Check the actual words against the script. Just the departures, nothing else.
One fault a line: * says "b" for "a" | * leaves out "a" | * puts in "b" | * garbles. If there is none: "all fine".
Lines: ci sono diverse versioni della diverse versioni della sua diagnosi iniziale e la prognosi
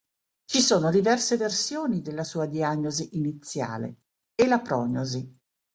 * leaves out "diverse versioni della"